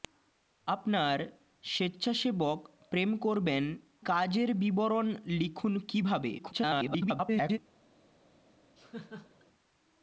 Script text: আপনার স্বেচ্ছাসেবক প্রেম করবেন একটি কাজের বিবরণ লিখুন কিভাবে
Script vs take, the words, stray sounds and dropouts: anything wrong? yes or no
yes